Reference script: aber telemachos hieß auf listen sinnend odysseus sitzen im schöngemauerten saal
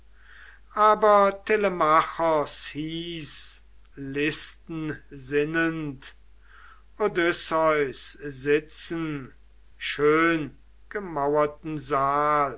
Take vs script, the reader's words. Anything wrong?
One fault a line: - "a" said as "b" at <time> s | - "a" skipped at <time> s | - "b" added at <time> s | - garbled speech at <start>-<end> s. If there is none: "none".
- "auf" skipped at 3.6 s
- "im" skipped at 9.3 s